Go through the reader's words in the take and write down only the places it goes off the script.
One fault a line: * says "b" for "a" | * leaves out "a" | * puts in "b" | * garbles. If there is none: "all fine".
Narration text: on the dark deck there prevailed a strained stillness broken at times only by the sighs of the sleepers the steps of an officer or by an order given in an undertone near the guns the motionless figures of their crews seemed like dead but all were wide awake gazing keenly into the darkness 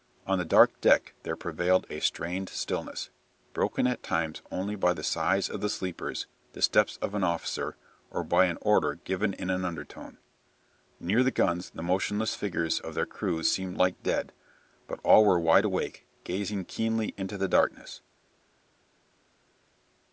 all fine